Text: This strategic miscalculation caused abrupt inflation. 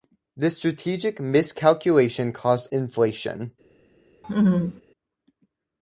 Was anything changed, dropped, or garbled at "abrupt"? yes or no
yes